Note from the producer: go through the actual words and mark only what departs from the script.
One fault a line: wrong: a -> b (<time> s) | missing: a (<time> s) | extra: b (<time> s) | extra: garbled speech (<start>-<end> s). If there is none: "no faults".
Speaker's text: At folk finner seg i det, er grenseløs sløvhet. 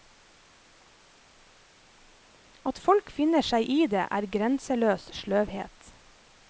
no faults